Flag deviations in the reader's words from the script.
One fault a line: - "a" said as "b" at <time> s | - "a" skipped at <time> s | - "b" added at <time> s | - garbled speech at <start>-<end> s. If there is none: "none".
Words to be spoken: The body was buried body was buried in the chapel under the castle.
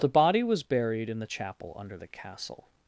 - "body was buried" skipped at 1.1 s